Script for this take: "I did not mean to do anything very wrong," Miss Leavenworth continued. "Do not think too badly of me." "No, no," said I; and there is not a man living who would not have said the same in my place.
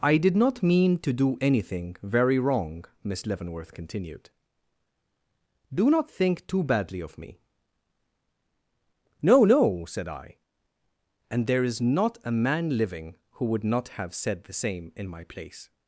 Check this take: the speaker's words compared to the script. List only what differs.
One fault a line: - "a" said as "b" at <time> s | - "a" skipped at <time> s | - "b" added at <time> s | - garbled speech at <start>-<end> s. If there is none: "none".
none